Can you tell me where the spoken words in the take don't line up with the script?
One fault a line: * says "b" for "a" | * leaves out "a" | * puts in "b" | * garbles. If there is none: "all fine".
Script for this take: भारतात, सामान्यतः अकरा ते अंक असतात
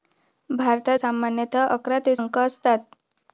all fine